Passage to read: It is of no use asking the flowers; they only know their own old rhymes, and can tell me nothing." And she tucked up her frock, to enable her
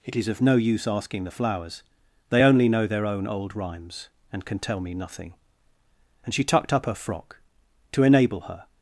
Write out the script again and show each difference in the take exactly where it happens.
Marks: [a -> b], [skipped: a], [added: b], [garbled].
It is of no use asking the flowers; they only know their own old rhymes, and can tell me nothing." And she tucked up her frock, to enable her